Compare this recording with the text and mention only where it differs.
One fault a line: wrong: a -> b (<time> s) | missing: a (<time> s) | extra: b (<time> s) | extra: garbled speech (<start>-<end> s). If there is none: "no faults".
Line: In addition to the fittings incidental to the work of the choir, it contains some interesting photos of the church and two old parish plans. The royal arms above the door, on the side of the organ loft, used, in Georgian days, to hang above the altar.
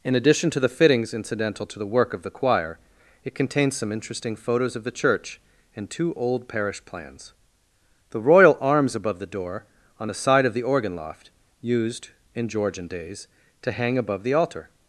no faults